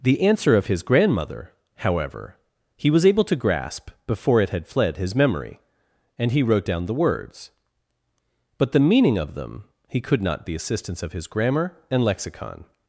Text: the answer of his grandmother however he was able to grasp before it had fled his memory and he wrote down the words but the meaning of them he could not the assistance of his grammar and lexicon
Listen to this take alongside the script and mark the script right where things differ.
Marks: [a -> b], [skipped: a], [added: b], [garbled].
the answer of his grandmother however he was able to grasp before it had fled his memory and he wrote down the words but the meaning of them he could not the assistance of his grammar and lexicon